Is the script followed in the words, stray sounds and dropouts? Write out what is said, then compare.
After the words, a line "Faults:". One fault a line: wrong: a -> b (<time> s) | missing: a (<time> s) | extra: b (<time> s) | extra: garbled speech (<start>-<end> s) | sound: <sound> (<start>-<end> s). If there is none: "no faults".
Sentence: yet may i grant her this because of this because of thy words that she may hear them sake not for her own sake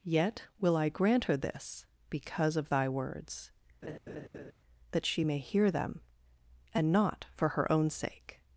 yet will i grant her this because of thy words that she may hear them and not for her own sake
Faults:
wrong: may -> will (0.6 s)
missing: this because of (2.7 s)
sound: laugh (3.8-4.5 s)
wrong: sake -> and (6.7 s)